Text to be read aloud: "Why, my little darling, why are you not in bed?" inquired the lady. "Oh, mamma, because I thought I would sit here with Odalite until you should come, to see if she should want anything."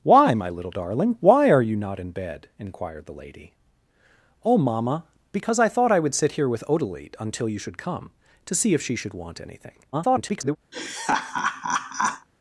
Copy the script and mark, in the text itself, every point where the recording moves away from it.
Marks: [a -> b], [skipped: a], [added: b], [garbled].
"Why, my little darling, why are you not in bed?" inquired the lady. "Oh, mamma, because I thought I would sit here with Odalite until you should come, to see if she should want anything." [garbled]